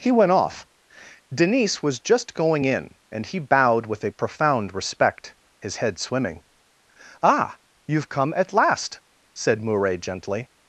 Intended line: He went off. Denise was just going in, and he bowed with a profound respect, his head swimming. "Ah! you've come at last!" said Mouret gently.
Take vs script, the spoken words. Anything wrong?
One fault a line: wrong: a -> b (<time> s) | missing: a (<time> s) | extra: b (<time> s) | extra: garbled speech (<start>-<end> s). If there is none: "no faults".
no faults